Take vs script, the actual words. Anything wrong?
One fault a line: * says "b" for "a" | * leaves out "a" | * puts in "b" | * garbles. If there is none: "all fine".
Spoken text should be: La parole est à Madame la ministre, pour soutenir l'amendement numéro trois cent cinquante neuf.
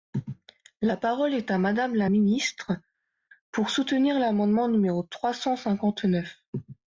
all fine